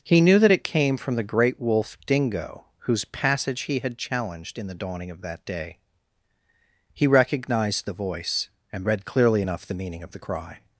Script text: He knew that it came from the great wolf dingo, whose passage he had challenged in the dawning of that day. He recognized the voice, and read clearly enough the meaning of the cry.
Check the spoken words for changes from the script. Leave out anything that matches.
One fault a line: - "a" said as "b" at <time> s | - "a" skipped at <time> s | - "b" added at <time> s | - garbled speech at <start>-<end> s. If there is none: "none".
none